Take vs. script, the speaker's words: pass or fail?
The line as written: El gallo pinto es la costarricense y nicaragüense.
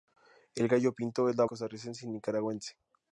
pass